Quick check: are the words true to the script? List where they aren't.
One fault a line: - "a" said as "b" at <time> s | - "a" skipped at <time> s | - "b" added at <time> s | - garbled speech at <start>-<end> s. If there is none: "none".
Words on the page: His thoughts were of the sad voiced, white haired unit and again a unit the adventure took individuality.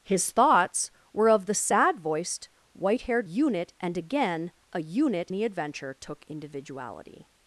none